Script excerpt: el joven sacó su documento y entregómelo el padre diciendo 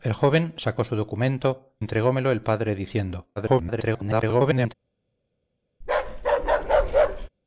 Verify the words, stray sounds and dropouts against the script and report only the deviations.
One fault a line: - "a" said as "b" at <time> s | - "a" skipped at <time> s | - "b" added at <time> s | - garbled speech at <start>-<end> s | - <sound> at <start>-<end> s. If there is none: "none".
- "y" skipped at 1.7 s
- garbled speech at 3.4-4.7 s
- bark at 5.8-7.3 s